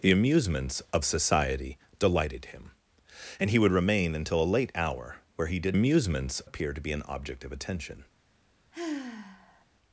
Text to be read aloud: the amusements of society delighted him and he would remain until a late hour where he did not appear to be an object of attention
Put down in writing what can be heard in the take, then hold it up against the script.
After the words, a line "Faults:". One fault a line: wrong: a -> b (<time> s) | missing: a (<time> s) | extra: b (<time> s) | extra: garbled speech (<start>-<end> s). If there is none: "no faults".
the amusements of society delighted him and he would remain until a late hour where he did amusements appear to be an object of attention
Faults:
wrong: not -> amusements (5.7 s)